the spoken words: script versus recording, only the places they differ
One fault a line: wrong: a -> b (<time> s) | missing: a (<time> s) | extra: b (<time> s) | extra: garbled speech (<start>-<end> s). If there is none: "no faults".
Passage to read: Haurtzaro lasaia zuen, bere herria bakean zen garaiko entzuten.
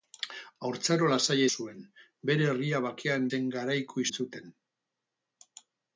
no faults